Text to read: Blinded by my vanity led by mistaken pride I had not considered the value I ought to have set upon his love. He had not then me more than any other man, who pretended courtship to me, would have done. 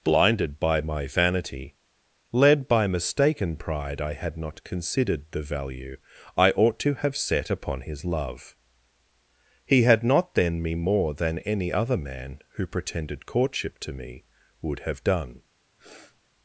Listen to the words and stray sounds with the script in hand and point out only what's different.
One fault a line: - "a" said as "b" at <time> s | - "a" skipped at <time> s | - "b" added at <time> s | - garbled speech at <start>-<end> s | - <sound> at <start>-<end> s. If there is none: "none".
- sniff at 15.8-16.2 s